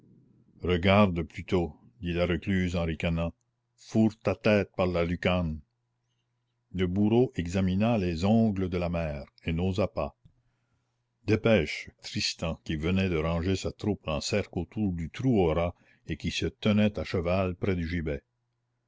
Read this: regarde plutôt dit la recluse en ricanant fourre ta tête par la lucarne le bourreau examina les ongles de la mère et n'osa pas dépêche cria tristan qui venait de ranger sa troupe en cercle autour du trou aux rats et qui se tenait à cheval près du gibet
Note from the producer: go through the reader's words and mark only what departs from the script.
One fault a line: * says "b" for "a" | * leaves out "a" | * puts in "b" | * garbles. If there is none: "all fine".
* leaves out "cria"